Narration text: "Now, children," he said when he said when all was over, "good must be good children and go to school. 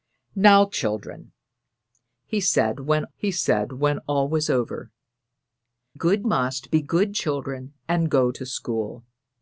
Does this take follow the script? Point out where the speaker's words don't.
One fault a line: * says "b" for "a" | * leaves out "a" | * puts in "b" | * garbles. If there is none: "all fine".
all fine